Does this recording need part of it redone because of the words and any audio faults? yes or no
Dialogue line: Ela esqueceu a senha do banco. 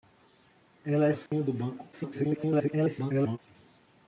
yes